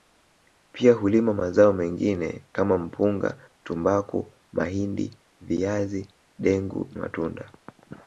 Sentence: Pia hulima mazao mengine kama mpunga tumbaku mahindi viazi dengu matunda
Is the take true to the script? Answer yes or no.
yes